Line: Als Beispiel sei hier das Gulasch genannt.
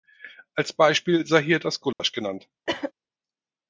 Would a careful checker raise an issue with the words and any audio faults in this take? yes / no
yes